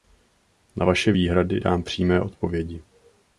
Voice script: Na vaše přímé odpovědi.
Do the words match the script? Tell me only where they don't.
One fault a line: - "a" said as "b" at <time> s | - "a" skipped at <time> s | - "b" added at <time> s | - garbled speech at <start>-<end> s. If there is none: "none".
- "výhrady dám" added at 1.1 s